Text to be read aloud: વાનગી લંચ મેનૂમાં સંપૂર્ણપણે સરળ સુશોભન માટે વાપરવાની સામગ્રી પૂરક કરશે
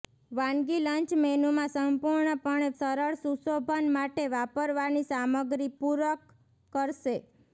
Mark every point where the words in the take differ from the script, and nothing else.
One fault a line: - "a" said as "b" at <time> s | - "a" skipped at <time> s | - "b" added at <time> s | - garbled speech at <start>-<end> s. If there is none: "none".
none